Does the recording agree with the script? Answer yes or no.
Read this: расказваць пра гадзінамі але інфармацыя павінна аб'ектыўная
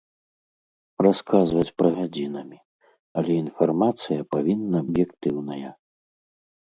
yes